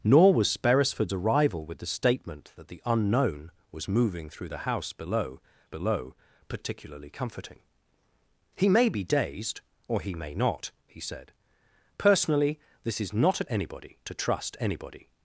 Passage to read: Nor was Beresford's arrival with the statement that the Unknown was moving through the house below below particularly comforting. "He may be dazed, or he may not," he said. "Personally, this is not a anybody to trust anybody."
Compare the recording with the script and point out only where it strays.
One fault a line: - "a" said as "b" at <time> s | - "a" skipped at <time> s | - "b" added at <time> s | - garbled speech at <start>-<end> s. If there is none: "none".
none